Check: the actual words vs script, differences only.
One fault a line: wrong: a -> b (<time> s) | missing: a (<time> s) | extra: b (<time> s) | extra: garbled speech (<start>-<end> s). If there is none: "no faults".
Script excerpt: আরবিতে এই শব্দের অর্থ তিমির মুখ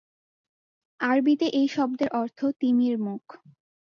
no faults